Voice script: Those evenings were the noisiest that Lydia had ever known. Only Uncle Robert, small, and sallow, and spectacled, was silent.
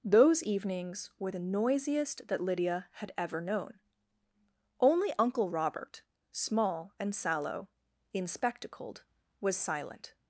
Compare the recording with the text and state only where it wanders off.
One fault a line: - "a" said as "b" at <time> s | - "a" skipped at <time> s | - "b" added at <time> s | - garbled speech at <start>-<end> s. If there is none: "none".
- "and" said as "in" at 8.1 s